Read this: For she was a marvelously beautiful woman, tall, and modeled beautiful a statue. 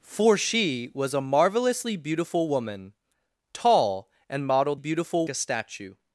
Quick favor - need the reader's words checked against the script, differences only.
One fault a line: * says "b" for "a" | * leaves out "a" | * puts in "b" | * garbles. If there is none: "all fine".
all fine